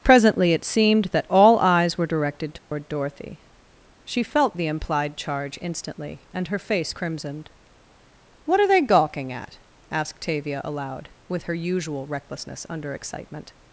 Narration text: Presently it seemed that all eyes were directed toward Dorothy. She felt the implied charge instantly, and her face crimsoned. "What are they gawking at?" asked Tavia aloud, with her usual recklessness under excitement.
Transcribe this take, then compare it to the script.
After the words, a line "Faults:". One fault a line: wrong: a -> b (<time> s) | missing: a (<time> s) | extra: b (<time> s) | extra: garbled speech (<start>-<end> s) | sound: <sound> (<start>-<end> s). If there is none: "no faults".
Presently it seemed that all eyes were directed toward Dorothy. She felt the implied charge instantly, and her face crimsoned. "What are they gawking at?" asked Tavia aloud, with her usual recklessness under excitement.
Faults:
sound: dropout (2.6-2.7 s)